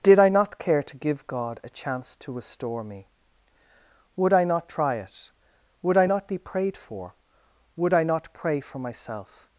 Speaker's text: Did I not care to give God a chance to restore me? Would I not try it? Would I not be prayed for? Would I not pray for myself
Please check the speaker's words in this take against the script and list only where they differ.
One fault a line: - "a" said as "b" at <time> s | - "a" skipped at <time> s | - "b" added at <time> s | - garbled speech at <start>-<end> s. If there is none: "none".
none